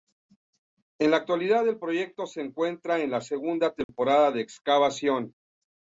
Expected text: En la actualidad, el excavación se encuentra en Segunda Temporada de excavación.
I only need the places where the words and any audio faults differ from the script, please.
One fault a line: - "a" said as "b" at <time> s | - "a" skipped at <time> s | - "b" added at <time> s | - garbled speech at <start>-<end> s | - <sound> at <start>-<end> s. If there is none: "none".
- "excavación" said as "proyecto" at 1.8 s
- "la" added at 3.1 s
- dropout at 3.8-3.9 s